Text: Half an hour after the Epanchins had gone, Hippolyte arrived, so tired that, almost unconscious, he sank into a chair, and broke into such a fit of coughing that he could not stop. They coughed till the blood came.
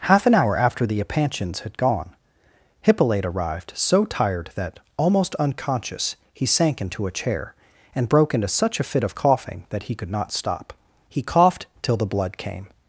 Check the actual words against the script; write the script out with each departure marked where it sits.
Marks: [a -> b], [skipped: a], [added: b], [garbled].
Half an hour after the Epanchins had gone, Hippolyte arrived, so tired that, almost unconscious, he sank into a chair, and broke into such a fit of coughing that he could not stop. [They -> He] coughed till the blood came.